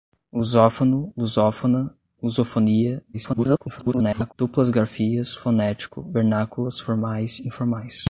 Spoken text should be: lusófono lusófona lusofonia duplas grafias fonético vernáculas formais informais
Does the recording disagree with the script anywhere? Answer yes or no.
yes